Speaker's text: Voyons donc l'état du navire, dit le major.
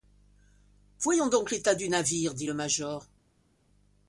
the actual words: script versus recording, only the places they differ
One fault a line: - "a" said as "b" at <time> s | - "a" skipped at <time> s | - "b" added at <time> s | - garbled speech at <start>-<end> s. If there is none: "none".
none